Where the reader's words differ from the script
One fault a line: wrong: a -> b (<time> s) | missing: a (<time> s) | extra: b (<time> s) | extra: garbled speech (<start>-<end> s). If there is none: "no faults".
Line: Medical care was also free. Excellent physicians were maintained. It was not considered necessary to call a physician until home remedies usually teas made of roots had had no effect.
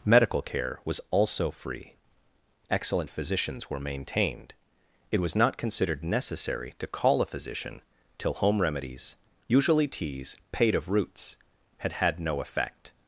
wrong: until -> till (8.2 s)
wrong: made -> paid (10.5 s)